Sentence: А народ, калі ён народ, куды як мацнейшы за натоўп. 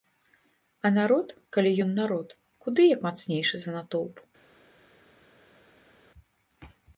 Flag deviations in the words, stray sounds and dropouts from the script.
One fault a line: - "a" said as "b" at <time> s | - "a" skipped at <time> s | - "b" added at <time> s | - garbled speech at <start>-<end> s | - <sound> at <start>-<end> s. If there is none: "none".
none